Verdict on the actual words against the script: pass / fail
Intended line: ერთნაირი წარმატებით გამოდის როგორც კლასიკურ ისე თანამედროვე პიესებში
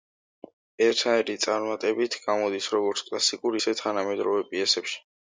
pass